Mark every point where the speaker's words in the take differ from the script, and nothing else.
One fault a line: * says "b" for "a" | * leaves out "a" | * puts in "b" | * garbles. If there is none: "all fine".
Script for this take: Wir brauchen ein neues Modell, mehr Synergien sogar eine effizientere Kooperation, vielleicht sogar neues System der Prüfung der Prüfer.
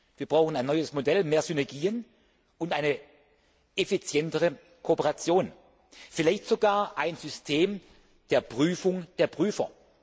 * says "und" for "sogar"
* says "ein" for "neues"